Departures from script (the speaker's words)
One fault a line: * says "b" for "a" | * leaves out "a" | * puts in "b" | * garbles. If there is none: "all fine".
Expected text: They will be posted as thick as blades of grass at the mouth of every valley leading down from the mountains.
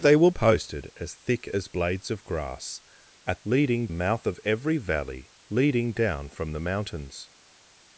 * leaves out "be"
* says "leading" for "the"